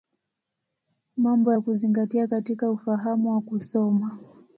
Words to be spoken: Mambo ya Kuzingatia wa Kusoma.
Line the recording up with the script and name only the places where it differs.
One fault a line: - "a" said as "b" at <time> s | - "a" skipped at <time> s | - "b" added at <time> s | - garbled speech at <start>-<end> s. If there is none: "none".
- "katika Ufahamu" added at 2.3 s